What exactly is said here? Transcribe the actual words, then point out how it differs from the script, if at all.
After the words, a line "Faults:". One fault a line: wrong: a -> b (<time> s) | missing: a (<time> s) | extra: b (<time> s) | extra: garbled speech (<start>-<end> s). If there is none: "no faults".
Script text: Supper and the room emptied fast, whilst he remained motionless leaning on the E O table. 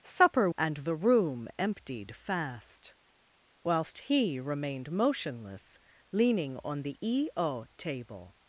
Supper and the room emptied fast, whilst he remained motionless leaning on the E O table.
Faults:
no faults